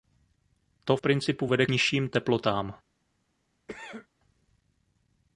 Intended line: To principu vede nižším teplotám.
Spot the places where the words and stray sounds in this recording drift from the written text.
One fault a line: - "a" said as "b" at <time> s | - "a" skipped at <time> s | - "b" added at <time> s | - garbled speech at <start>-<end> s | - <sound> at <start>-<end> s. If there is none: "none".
- cough at 3.7-4.1 s